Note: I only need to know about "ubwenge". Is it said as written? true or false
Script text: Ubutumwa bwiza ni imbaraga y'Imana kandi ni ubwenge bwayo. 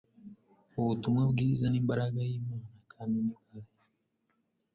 false